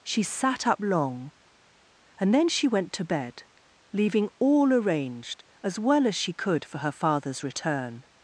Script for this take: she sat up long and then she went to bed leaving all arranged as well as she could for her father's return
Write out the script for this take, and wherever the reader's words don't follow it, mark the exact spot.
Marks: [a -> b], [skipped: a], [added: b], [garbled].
she sat up long and then she went to bed leaving all arranged as well as she could for her father's return